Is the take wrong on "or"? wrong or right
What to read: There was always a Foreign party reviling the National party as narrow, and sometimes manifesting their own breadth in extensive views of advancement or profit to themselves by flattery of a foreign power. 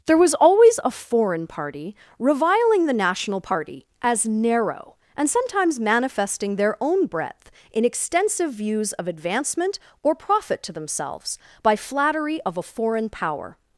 right